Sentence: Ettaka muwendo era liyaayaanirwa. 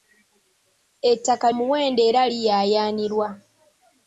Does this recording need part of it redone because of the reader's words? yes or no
no